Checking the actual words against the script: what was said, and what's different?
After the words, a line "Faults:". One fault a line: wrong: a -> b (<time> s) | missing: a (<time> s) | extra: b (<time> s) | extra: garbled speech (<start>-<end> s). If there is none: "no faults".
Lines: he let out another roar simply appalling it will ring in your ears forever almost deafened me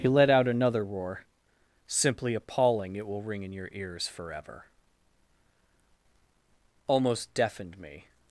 he let out another roar simply appalling it will ring in your ears forever almost deafened me
Faults:
no faults